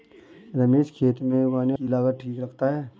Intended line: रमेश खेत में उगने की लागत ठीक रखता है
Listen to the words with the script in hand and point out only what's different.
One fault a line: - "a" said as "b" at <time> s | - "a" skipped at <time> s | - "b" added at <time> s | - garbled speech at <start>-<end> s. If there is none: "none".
none